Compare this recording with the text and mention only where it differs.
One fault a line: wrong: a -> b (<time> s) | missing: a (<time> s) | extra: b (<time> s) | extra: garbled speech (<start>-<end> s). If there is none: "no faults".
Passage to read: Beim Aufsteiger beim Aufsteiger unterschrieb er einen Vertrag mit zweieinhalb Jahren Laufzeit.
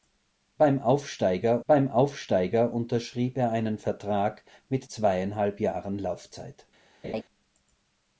no faults